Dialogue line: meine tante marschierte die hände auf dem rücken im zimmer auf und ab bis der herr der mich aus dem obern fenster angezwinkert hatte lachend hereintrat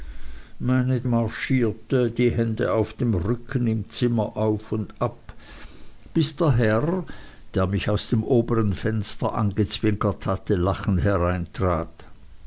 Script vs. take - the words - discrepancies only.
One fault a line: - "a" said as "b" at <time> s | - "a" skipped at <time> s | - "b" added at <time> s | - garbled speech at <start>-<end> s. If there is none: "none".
- "tante" skipped at 1.1 s